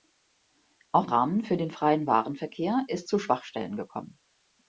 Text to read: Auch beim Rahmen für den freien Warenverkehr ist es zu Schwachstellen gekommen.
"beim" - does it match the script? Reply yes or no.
no